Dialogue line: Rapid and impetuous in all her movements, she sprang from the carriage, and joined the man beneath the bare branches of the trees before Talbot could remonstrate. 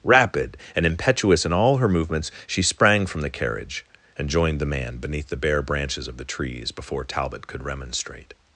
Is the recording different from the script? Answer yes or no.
no